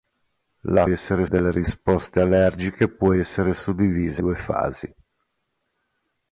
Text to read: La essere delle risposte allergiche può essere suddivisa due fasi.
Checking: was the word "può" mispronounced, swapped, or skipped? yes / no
no